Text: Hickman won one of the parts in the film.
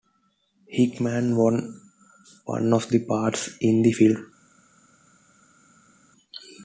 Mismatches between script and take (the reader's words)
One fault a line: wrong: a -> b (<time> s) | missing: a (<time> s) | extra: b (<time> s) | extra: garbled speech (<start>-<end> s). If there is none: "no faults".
no faults